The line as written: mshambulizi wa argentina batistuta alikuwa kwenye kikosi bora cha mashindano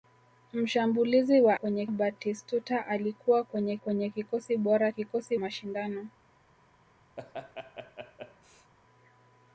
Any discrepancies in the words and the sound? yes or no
yes